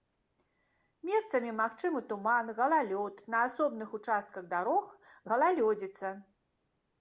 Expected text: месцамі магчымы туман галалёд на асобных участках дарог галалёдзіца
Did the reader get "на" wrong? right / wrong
right